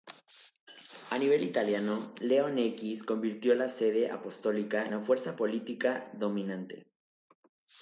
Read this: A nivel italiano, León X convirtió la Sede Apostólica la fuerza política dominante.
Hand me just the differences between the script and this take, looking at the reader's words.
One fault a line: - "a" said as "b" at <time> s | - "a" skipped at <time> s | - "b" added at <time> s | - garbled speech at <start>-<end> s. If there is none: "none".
none